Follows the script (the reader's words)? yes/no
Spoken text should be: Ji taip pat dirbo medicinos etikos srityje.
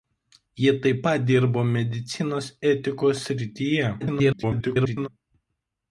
no